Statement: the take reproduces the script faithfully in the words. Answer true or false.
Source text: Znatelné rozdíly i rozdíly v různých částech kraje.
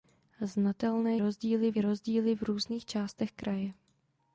true